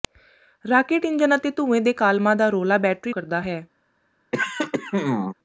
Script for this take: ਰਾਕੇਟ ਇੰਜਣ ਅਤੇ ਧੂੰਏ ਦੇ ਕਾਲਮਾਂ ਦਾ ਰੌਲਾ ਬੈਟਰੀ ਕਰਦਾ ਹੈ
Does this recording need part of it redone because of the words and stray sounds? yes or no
yes